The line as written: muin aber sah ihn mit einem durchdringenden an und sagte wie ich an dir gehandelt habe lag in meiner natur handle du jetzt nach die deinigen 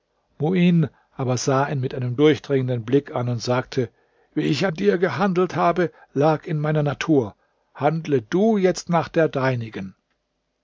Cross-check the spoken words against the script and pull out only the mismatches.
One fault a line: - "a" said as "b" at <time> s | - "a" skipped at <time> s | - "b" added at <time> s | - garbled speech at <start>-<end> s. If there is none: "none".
- "blick" added at 2.8 s
- "die" said as "der" at 9.1 s